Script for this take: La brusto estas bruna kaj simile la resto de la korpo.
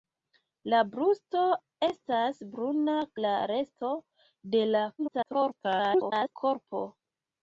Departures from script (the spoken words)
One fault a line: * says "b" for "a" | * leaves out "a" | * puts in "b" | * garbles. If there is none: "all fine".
* leaves out "kaj simile"
* garbles